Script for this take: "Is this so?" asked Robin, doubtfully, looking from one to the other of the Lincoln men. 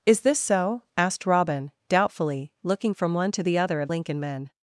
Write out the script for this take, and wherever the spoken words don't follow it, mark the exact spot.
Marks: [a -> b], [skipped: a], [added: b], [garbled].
"Is this so?" asked Robin, doubtfully, looking from one to the other of [skipped: the] Lincoln men.